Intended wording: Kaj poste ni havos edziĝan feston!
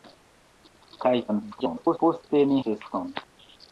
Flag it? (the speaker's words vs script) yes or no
yes